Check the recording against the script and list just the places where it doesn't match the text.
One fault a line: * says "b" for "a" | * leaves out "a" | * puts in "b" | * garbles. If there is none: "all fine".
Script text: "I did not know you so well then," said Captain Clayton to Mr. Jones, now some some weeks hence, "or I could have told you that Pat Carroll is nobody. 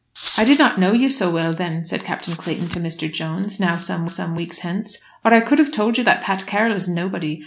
all fine